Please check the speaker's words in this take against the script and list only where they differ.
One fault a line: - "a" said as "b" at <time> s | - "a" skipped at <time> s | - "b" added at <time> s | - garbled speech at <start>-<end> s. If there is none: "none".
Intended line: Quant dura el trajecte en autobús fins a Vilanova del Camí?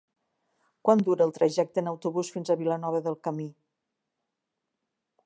none